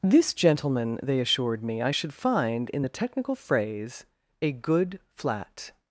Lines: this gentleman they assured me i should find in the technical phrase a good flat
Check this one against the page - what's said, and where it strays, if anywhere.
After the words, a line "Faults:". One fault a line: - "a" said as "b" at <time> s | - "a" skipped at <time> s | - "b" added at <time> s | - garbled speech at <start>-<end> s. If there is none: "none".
this gentleman they assured me i should find in the technical phrase a good flat
Faults:
none